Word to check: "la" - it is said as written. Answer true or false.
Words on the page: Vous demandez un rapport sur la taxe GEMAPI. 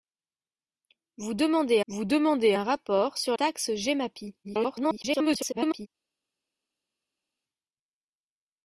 false